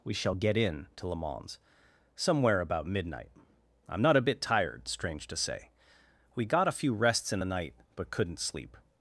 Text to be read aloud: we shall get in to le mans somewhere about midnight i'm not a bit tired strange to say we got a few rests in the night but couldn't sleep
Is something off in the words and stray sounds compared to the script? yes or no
no